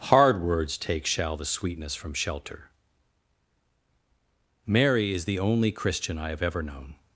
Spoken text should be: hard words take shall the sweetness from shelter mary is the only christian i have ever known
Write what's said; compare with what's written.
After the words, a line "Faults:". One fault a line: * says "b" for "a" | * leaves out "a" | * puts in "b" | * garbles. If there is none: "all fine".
hard words take shall the sweetness from shelter mary is the only christian i have ever known
Faults:
all fine